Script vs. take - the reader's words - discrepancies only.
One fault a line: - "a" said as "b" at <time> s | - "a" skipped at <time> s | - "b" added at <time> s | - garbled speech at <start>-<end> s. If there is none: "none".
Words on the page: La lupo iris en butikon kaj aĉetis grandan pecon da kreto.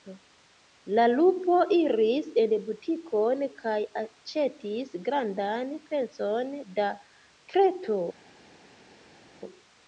none